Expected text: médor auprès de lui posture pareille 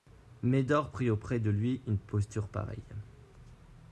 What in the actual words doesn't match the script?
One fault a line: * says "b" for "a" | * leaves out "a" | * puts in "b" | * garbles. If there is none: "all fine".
* puts in "prit"
* puts in "une"